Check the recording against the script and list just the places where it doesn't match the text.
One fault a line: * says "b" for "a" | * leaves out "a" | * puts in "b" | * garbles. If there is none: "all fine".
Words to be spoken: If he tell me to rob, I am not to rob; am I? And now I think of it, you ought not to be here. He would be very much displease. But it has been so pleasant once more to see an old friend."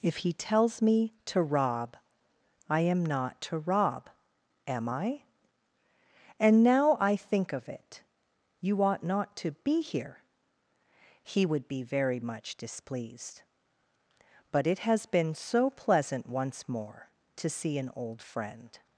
* says "tells" for "tell"
* says "displeased" for "displease"